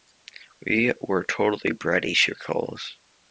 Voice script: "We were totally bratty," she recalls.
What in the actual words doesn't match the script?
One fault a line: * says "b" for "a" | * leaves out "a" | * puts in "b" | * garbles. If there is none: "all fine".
all fine